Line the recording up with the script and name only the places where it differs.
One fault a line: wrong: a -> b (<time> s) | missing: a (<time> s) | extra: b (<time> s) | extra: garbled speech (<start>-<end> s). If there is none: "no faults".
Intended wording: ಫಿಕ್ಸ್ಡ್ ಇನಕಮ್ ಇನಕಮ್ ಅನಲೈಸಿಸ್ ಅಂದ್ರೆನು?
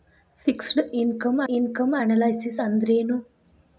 no faults